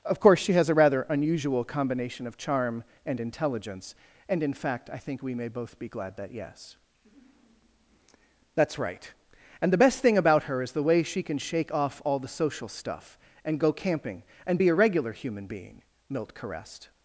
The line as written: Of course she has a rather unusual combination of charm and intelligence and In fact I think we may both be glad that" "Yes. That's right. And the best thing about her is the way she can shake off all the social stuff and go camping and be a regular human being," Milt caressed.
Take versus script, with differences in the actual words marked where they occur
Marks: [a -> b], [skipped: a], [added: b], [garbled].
Of course she has a rather unusual combination of charm and intelligence and In fact I think we may both be glad that" "Yes. That's right. And the best thing about her is the way she can shake off all the social stuff and go camping and be a regular human being," Milt caressed.